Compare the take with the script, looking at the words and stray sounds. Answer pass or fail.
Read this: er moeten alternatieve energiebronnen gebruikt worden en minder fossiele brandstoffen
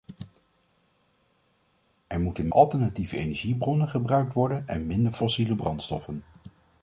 pass